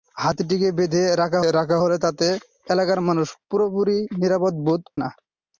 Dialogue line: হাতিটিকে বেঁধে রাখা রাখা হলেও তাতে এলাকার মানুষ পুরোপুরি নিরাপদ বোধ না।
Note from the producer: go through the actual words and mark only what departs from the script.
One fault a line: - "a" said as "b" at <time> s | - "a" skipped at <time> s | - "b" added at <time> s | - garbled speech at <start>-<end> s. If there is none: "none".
none